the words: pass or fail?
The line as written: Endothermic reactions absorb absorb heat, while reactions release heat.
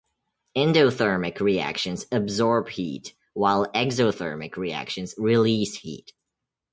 fail